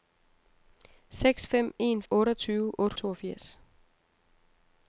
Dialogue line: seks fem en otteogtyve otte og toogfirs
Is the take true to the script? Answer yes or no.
yes